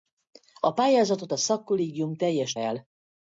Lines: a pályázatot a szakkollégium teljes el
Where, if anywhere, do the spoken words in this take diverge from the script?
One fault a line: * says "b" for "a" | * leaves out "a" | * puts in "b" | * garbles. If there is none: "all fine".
all fine